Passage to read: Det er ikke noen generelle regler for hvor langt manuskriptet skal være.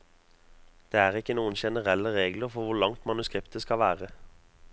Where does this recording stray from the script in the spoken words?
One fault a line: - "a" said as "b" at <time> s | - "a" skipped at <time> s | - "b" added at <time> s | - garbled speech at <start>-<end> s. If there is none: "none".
none